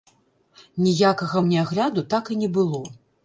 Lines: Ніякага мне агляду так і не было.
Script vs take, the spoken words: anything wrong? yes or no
no